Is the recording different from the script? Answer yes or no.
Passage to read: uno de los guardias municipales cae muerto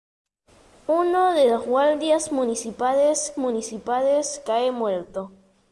yes